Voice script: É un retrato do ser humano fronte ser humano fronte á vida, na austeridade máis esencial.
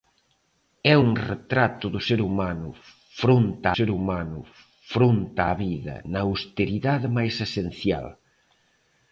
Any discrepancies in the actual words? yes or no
no